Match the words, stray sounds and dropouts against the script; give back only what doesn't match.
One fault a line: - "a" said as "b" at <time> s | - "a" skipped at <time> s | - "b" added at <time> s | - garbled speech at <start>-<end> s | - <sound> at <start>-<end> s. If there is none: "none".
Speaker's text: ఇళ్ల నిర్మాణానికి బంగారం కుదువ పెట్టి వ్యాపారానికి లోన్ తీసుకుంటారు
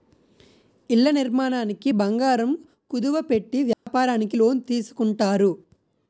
- dropout at 3.7-3.9 s